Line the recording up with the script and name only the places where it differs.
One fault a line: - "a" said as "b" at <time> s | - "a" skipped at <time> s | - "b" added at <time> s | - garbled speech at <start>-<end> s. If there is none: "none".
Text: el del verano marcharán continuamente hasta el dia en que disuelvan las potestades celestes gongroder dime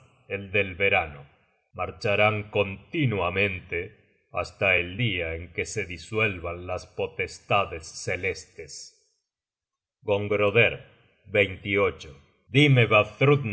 - "se" added at 5.7 s